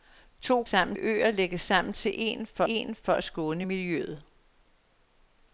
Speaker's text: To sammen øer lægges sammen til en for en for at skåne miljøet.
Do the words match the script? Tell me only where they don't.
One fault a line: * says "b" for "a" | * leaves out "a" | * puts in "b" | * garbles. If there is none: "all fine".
all fine